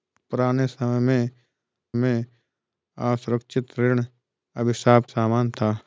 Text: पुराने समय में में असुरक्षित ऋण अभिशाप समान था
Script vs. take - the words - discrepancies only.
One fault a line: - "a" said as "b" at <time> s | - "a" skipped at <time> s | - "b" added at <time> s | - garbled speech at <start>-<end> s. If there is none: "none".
none